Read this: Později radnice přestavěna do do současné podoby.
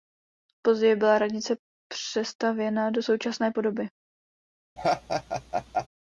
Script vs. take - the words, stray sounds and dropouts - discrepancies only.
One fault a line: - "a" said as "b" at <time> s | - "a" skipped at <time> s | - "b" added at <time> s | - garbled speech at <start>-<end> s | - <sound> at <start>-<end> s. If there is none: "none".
- "byla" added at 0.9 s
- "do" skipped at 3.0 s
- laugh at 4.8-5.9 s